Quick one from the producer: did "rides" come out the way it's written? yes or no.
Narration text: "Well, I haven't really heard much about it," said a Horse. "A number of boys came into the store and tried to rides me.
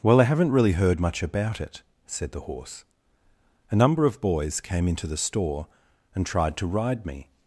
no